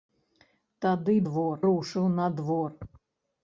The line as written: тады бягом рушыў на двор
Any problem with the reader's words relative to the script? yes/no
yes